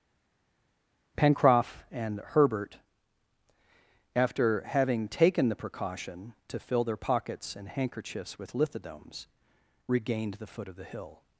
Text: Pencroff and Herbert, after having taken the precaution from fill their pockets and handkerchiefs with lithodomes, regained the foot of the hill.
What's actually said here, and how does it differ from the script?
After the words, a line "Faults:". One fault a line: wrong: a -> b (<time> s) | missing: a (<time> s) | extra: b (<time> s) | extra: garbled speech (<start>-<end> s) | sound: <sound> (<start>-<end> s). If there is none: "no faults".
Pencroff and Herbert, after having taken the precaution to fill their pockets and handkerchiefs with lithodomes, regained the foot of the hill.
Faults:
wrong: from -> to (6.5 s)